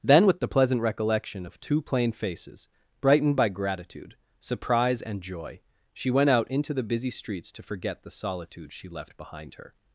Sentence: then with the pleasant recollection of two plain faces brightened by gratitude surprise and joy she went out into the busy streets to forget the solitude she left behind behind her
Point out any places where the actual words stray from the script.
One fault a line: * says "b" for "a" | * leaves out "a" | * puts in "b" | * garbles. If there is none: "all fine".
* leaves out "behind"